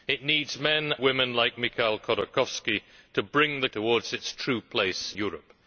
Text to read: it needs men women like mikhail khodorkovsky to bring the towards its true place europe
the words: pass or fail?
pass